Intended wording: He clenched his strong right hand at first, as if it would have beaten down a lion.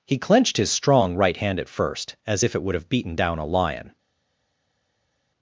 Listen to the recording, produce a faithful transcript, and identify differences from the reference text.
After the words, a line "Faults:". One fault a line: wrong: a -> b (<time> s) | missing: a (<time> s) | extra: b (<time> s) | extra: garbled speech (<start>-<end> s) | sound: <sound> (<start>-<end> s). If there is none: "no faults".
He clenched his strong right hand at first, as if it would have beaten down a lion.
Faults:
no faults